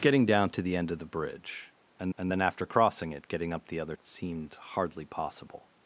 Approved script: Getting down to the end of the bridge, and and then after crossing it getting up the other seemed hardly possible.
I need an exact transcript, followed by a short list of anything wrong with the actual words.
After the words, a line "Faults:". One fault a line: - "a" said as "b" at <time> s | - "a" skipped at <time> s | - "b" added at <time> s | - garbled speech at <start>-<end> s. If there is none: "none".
Getting down to the end of the bridge, and and then after crossing it getting up the other seemed hardly possible.
Faults:
none